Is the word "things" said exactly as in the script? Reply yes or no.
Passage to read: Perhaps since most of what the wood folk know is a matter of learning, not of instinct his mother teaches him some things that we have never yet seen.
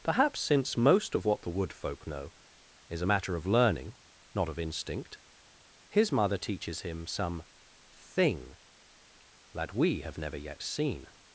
no